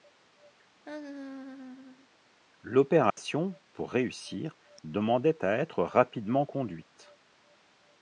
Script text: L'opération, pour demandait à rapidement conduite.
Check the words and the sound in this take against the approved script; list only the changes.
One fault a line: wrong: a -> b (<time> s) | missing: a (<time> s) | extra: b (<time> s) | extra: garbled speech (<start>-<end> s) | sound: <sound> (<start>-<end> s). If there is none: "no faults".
sound: laugh (0.8-2.1 s)
sound: dropout (3.1-3.2 s)
extra: réussir (3.9 s)
extra: être (5.6 s)